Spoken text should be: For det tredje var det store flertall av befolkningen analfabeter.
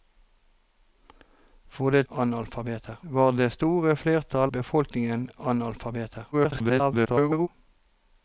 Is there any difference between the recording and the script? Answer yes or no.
yes